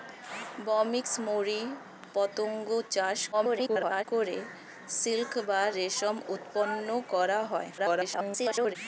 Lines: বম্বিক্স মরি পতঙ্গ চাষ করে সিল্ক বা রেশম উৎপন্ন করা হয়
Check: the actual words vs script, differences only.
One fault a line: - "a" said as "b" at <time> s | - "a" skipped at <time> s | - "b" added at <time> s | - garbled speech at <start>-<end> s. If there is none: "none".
- garbled speech at 3.3-4.1 s
- garbled speech at 7.8-8.8 s